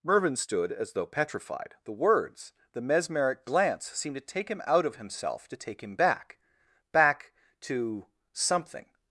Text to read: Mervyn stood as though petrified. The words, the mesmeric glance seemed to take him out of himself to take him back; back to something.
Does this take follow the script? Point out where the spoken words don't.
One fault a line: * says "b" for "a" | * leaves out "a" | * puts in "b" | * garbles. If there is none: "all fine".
all fine